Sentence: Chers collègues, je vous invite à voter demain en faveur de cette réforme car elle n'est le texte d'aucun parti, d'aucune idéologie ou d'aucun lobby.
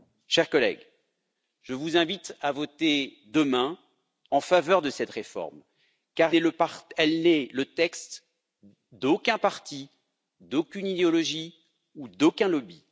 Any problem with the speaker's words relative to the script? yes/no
yes